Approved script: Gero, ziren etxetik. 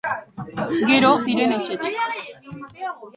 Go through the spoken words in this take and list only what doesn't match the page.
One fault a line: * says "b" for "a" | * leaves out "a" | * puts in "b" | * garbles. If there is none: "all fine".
all fine